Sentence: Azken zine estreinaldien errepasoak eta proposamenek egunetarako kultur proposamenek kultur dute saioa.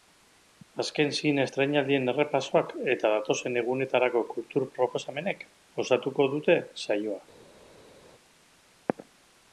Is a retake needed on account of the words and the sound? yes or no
yes